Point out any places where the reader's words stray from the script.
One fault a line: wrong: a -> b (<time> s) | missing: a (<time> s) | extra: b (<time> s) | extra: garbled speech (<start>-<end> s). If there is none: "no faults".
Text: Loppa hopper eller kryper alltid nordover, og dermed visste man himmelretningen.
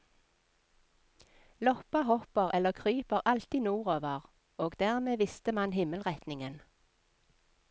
no faults